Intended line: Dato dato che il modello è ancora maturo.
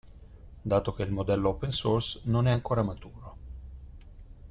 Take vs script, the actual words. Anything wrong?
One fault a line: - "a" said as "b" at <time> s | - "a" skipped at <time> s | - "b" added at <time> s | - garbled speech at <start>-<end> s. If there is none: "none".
- "dato" skipped at 0.9 s
- "open source non" added at 1.5 s